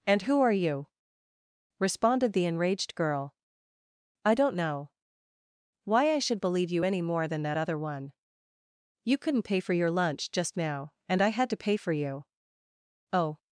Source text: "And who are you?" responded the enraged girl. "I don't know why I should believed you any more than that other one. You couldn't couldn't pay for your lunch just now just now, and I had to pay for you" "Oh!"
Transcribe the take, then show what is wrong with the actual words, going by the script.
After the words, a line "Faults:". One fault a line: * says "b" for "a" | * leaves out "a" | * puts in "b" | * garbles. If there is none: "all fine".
"And who are you?" responded the enraged girl. "I don't know why I should believe you any more than that other one. You couldn't pay for your lunch just now, and I had to pay for you" "Oh!"
Faults:
* says "believe" for "believed"
* leaves out "couldn't"
* leaves out "just now"